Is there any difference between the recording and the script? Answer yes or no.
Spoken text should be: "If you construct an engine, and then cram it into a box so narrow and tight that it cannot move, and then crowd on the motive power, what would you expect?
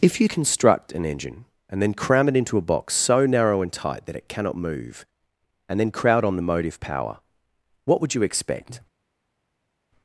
no